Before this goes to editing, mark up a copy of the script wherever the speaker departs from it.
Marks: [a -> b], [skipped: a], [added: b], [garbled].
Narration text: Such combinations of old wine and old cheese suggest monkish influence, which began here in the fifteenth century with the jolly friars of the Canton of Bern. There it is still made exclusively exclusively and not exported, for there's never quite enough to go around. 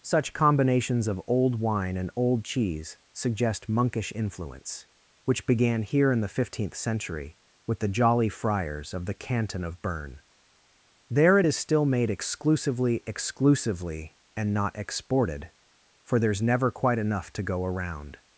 Such combinations of old wine and old cheese suggest monkish influence, which began here in the fifteenth century with the jolly friars of the Canton of Bern. There it is still made exclusively exclusively and not exported, for there's never quite enough to go around.